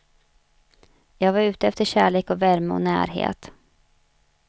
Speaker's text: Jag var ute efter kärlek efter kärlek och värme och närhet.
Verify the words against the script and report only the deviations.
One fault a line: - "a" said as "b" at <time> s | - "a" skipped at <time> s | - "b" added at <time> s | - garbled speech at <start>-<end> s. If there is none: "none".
- "efter kärlek" skipped at 2.3 s